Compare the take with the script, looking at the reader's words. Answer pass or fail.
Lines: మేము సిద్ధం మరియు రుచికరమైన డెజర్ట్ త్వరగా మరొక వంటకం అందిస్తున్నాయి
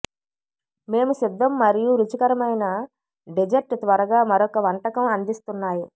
pass